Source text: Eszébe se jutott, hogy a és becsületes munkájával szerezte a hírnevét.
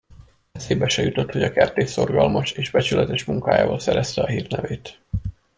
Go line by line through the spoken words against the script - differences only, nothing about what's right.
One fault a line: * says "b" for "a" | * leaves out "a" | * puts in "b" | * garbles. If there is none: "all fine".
* puts in "kertész szorgalmas"